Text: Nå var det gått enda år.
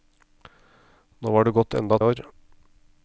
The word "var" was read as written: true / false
true